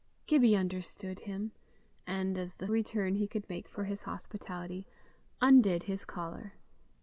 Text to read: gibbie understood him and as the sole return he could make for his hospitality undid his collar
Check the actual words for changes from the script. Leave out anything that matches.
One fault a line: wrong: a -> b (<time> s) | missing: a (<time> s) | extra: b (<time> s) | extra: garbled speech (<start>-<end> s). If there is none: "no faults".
missing: sole (2.7 s)